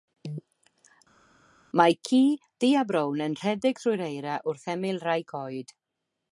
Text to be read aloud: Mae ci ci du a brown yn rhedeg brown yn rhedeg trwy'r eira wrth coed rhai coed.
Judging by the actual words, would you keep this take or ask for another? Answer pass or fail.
fail